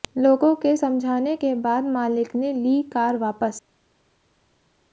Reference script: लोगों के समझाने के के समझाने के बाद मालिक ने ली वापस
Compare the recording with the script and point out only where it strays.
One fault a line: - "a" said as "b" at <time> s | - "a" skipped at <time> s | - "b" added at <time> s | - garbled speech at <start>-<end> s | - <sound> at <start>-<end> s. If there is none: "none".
- "के समझाने के" skipped at 1.5 s
- "कार" added at 2.8 s